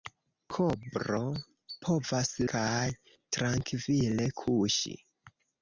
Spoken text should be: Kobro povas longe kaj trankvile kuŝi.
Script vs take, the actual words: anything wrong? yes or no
yes